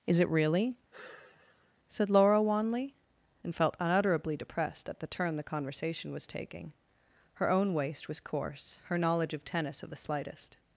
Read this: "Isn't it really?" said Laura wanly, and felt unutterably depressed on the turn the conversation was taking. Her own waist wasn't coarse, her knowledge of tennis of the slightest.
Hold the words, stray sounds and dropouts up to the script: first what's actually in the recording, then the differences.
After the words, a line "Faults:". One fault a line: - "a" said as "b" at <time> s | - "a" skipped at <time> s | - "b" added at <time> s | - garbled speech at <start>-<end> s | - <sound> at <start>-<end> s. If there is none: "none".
"Is it really?" said Laura wanly, and felt unutterably depressed at the turn the conversation was taking. Her own waist was coarse, her knowledge of tennis of the slightest.
Faults:
- "Isn't" said as "Is" at 0.1 s
- sigh at 0.9-1.7 s
- "on" said as "at" at 4.9 s
- "wasn't" said as "was" at 8.1 s